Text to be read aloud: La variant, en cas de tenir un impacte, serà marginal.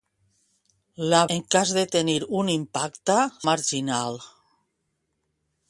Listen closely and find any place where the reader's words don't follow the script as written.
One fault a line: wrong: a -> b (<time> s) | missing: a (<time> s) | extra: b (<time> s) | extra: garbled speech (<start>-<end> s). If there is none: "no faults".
missing: variant (1.2 s)
missing: serà (3.2 s)